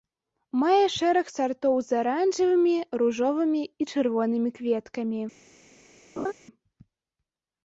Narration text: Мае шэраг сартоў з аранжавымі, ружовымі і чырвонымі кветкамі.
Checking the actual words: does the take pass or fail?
pass